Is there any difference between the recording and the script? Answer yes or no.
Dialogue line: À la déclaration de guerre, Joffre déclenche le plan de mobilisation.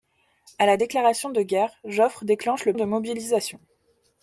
yes